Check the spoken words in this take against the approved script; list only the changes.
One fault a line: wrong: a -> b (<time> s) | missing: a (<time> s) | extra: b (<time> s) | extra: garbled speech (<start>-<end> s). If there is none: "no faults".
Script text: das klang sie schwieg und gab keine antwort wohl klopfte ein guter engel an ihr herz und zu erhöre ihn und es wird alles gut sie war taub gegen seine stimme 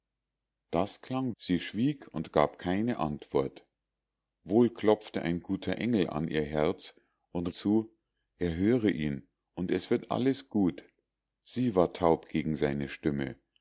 no faults